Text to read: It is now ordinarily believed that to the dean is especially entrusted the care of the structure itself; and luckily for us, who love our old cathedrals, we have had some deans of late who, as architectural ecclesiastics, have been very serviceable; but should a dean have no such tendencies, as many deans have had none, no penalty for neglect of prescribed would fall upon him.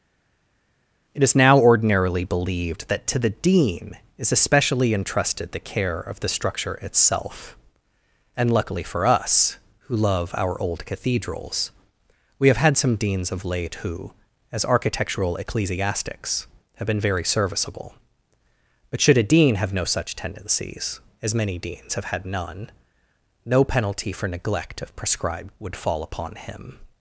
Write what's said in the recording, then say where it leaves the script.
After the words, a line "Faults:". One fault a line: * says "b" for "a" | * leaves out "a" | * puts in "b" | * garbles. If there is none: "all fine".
It is now ordinarily believed that to the dean is especially entrusted the care of the structure itself; and luckily for us, who love our old cathedrals, we have had some deans of late who, as architectural ecclesiastics, have been very serviceable; but should a dean have no such tendencies, as many deans have had none, no penalty for neglect of prescribed would fall upon him.
Faults:
all fine